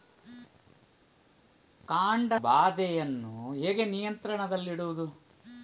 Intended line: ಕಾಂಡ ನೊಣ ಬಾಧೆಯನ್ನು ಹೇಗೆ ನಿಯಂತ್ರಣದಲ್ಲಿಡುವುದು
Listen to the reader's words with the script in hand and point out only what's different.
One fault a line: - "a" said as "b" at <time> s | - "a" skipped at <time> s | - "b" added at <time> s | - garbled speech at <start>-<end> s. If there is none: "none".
- "ನೊಣ" skipped at 2.3 s